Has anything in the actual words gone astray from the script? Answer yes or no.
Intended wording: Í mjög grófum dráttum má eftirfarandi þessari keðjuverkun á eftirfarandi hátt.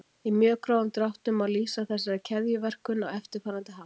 yes